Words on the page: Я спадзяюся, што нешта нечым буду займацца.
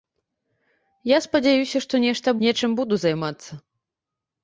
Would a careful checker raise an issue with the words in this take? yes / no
no